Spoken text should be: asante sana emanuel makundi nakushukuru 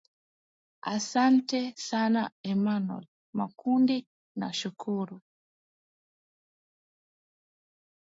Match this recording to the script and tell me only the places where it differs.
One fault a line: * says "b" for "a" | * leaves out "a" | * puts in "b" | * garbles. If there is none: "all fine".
all fine